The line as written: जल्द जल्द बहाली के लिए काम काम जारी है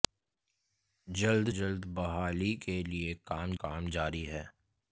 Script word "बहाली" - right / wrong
right